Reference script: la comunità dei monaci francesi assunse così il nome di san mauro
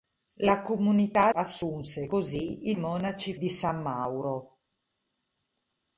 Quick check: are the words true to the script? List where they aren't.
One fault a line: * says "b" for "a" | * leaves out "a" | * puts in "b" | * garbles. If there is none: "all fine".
* leaves out "dei monaci francesi"
* says "monaci" for "nome"